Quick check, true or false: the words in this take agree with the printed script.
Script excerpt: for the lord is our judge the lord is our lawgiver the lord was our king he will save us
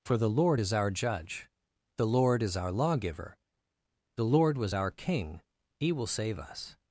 true